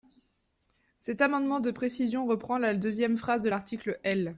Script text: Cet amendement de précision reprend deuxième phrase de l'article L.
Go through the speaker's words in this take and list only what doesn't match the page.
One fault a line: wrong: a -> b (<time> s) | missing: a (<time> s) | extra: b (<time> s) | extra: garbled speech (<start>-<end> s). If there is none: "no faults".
extra: la (2.6 s)